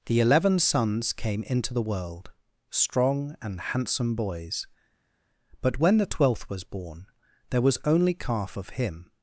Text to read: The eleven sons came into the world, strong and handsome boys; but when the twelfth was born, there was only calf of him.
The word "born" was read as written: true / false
true